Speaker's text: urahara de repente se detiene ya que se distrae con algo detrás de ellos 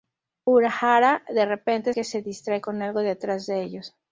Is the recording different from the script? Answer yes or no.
yes